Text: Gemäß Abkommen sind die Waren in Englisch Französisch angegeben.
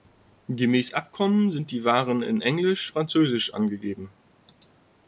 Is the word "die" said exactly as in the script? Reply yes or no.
yes